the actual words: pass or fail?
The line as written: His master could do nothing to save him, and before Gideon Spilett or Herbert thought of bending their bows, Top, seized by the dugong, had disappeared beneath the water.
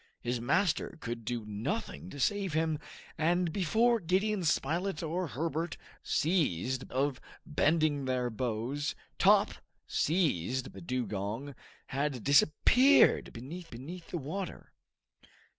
fail